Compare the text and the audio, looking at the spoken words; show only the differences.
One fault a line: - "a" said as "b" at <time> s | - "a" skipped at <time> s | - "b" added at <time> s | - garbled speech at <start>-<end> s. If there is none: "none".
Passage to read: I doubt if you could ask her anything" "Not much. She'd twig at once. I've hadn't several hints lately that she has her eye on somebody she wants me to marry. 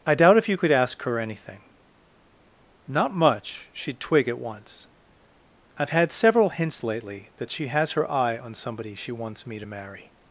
- "hadn't" said as "had" at 5.9 s